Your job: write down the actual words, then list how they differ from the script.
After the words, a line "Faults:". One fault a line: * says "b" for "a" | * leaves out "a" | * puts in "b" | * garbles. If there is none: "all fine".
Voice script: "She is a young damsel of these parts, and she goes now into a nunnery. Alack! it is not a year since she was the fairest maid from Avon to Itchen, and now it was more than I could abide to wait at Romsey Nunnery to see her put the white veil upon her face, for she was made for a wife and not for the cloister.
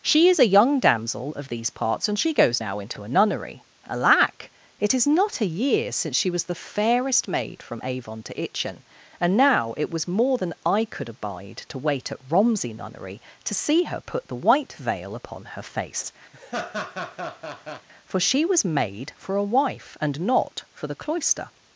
"She is a young damsel of these parts, and she goes now into a nunnery. Alack! it is not a year since she was the fairest maid from Avon to Itchen, and now it was more than I could abide to wait at Romsey Nunnery to see her put the white veil upon her face, for she was made for a wife and not for the cloister.
Faults:
all fine